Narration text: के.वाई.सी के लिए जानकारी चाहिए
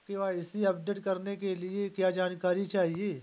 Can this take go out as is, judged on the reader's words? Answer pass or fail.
fail